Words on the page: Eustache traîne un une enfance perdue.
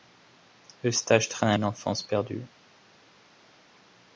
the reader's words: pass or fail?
pass